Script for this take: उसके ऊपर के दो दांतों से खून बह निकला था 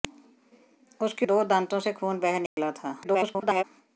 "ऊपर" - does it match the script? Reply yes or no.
no